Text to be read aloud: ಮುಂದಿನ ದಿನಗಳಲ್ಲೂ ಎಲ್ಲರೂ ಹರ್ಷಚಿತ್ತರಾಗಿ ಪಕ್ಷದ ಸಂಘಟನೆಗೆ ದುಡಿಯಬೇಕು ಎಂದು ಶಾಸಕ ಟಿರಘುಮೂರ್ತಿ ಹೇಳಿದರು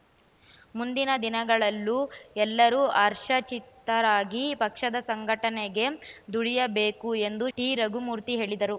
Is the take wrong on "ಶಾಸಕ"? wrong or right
wrong